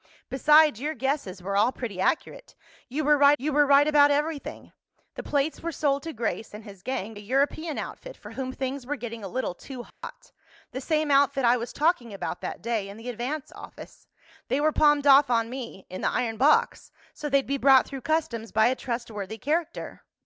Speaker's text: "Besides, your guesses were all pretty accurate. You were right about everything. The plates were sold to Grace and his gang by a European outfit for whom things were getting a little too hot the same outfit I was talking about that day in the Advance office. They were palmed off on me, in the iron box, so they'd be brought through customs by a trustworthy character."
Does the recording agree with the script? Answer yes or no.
no